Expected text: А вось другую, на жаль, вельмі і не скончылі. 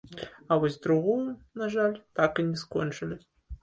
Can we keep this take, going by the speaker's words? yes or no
no